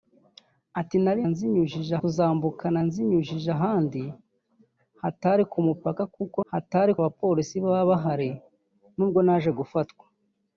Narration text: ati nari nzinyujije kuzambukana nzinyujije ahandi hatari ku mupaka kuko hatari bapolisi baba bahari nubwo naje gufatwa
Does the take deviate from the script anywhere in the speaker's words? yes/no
no